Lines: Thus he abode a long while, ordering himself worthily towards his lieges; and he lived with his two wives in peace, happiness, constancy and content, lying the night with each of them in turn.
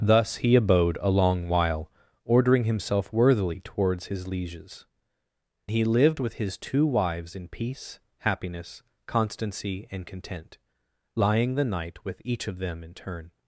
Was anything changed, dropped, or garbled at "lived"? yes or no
no